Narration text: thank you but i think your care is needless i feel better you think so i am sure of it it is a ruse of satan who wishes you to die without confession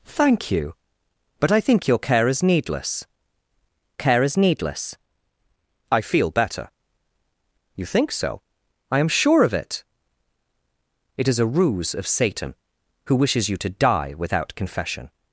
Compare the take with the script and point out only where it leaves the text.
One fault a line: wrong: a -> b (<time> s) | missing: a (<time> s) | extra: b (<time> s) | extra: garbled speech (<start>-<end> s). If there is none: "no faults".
extra: care is needless (4.0 s)